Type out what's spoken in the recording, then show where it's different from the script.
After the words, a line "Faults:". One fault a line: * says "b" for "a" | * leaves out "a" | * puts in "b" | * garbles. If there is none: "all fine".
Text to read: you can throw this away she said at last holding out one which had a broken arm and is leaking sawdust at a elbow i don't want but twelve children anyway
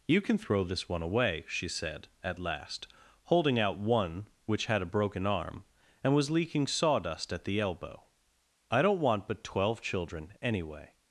you can throw this one away she said at last holding out one which had a broken arm and was leaking sawdust at the elbow i don't want but twelve children anyway
Faults:
* puts in "one"
* says "was" for "is"
* says "the" for "a"